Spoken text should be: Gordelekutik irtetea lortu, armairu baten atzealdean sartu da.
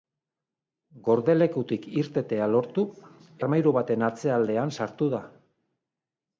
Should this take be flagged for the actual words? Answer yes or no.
no